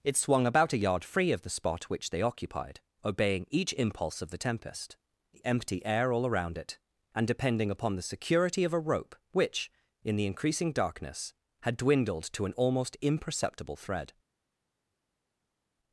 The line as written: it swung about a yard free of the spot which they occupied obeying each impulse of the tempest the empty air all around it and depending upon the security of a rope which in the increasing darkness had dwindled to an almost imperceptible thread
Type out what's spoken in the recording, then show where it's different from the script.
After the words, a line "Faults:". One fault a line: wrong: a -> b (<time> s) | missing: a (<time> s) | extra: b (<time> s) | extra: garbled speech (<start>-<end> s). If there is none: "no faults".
it swung about a yard free of the spot which they occupied obeying each impulse of the tempest the empty air all around it and depending upon the security of a rope which in the increasing darkness had dwindled to an almost imperceptible thread
Faults:
no faults